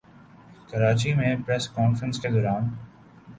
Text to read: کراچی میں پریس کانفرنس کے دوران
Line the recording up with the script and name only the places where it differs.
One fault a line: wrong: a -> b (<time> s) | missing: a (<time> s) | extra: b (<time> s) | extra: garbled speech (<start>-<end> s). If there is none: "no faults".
no faults